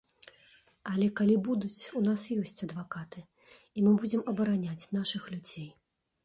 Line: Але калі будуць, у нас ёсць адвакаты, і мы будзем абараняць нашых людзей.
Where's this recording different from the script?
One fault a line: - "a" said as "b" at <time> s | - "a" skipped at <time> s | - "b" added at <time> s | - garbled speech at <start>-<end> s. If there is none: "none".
none